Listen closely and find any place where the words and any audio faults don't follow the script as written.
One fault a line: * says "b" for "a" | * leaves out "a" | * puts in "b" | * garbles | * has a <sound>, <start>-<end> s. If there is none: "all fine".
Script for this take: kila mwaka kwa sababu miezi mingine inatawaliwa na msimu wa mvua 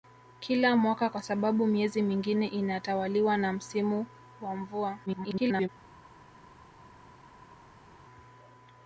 * garbles